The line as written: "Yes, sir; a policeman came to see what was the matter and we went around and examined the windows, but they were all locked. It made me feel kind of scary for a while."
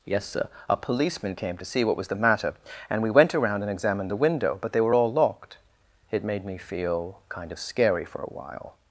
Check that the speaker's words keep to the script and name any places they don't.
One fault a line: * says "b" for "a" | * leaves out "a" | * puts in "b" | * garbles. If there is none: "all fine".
* says "window" for "windows"